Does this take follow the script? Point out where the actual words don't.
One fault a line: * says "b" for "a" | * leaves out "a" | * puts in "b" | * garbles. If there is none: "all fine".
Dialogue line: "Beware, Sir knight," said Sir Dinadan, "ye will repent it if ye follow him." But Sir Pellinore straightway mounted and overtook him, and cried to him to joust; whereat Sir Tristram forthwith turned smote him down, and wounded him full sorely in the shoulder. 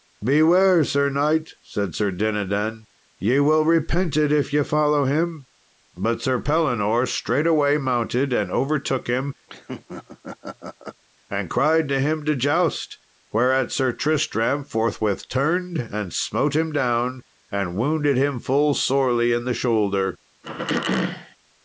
* puts in "and"